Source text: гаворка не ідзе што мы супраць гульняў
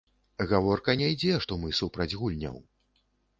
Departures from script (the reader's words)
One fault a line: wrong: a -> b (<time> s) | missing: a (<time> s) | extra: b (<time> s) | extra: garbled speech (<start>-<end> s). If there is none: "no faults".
no faults